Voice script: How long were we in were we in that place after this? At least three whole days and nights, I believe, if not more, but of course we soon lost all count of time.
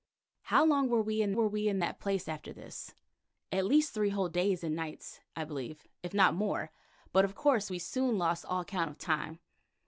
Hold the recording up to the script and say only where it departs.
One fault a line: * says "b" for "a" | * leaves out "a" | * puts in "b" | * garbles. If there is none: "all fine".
all fine